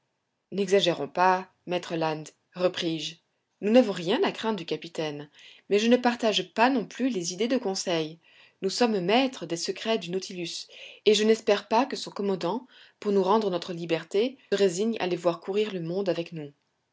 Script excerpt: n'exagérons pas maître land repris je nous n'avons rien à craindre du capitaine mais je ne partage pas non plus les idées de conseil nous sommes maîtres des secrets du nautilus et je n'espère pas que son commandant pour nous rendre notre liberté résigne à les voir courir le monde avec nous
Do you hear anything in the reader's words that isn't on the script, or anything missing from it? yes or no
no